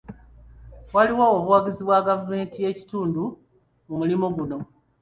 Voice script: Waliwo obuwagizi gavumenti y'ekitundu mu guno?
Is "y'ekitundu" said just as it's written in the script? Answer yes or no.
yes